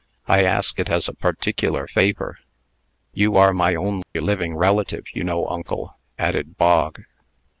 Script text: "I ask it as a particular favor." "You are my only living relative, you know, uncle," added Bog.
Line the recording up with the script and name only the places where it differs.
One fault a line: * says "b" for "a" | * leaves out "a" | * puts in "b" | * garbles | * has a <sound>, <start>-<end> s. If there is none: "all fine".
* has a dropout, 4.0-4.1 s